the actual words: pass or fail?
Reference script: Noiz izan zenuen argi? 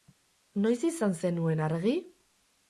pass